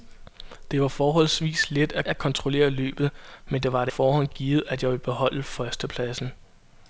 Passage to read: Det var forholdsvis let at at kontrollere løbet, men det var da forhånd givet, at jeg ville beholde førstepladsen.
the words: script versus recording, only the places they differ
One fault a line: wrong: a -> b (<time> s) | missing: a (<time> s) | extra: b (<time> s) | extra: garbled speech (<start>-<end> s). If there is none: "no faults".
no faults